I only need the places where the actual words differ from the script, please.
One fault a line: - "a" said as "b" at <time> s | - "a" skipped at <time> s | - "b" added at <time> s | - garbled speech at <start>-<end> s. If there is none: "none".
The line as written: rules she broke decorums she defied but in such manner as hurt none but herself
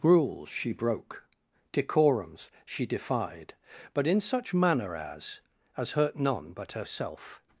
- "as" added at 5.8 s